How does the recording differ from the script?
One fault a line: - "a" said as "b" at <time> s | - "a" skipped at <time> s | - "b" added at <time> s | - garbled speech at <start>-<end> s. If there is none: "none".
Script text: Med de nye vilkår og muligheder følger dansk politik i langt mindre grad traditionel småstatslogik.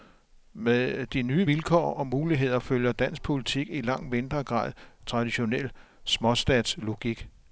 none